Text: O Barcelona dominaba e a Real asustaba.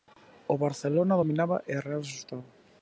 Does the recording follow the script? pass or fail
pass